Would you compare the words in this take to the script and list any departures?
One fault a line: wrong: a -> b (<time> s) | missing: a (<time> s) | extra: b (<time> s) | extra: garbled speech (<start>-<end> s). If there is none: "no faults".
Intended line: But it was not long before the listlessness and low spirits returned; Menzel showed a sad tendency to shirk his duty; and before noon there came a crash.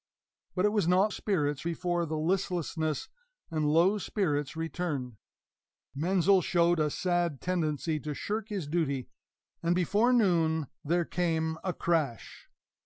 wrong: long -> spirits (1.1 s)